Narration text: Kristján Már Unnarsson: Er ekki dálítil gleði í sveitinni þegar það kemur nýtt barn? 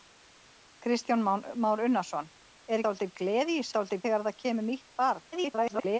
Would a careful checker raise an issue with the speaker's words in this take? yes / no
yes